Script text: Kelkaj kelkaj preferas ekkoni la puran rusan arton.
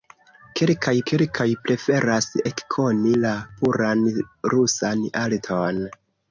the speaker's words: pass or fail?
pass